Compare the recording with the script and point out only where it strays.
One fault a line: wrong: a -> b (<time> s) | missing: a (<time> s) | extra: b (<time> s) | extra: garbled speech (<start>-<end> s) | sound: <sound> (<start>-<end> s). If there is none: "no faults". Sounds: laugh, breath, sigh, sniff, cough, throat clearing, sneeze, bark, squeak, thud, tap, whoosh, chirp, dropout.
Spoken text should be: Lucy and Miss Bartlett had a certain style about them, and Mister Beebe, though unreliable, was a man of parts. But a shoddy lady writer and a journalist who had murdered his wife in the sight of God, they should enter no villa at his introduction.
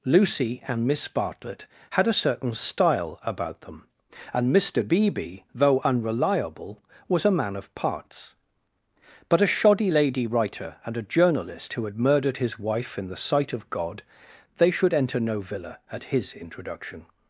no faults